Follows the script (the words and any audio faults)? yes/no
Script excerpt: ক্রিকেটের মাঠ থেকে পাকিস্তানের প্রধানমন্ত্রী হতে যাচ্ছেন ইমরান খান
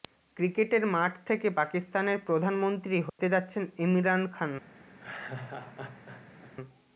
no